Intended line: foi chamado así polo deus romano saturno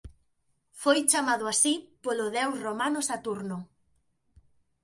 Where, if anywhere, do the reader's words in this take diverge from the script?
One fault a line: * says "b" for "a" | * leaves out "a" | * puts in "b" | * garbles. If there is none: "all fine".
all fine